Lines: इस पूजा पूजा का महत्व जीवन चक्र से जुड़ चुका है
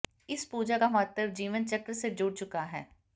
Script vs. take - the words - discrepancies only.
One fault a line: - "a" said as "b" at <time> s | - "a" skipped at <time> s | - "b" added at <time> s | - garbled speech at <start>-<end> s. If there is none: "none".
- "पूजा" skipped at 0.8 s